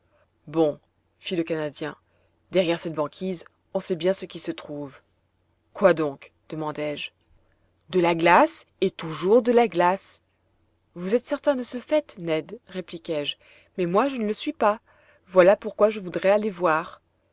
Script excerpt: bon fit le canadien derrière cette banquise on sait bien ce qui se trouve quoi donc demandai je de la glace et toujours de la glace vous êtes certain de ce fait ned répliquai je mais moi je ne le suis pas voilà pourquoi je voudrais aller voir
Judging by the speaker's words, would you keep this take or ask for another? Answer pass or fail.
pass